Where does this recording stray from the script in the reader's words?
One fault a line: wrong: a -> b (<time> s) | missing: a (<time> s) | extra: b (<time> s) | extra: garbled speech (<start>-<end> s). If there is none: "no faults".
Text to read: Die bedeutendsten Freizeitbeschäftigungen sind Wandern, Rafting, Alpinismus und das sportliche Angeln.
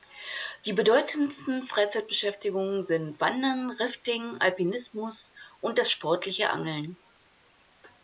no faults